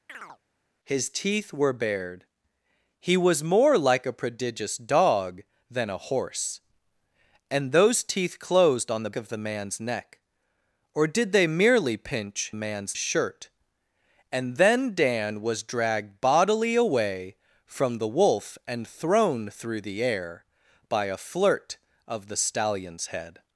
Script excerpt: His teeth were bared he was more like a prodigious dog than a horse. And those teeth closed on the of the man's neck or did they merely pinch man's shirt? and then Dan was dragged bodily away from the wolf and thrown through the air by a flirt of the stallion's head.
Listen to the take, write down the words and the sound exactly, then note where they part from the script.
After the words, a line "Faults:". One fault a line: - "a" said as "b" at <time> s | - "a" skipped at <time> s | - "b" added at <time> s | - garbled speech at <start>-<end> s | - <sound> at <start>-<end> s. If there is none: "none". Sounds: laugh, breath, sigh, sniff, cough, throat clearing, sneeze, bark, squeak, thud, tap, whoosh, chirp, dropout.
His teeth were bared he was more like a prodigious dog than a horse. And those teeth closed on the of the man's neck or did they merely pinch man's shirt? and then Dan was dragged bodily away from the wolf and thrown through the air by a flirt of the stallion's head.
Faults:
- chirp at 0.1-0.4 s